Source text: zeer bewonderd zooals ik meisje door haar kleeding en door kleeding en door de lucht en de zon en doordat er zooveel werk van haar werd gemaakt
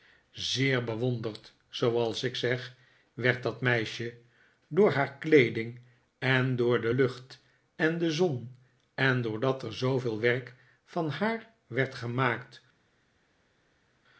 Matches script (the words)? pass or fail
fail